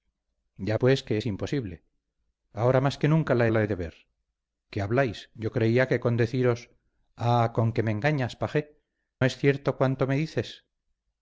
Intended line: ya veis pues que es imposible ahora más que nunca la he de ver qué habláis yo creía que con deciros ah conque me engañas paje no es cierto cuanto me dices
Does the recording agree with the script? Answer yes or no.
no